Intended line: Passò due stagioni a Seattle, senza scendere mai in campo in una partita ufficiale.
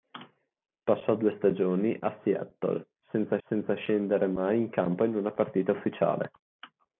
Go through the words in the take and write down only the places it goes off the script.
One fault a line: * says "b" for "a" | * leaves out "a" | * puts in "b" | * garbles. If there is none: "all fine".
* puts in "senza"